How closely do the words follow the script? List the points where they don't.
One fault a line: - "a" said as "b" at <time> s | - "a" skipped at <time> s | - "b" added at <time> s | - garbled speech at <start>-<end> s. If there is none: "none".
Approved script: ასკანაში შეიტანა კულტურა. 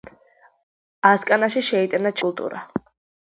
none